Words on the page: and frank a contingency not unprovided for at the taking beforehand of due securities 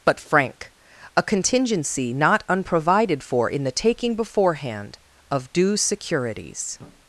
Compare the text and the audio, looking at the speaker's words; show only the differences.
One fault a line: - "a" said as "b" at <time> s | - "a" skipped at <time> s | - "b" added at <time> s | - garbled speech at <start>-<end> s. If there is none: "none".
- "and" said as "but" at 0.1 s
- "at" said as "in" at 3.5 s